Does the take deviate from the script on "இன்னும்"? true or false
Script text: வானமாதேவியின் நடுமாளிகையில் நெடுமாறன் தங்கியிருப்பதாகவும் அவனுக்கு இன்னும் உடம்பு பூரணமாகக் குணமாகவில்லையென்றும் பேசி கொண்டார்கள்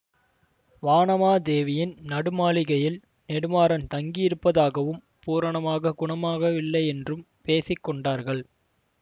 true